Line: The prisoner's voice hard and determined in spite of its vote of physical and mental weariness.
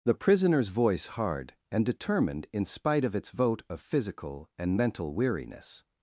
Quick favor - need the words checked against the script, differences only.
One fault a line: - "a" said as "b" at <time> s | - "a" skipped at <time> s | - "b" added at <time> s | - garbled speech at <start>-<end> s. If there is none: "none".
none